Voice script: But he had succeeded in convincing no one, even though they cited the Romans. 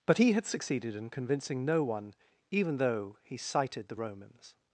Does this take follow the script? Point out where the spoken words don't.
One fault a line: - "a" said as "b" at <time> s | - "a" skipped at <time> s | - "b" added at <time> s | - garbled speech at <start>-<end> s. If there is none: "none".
- "they" said as "he" at 3.2 s